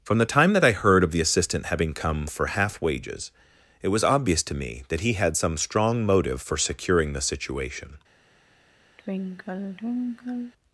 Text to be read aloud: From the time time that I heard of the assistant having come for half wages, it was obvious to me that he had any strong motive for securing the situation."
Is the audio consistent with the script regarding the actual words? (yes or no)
no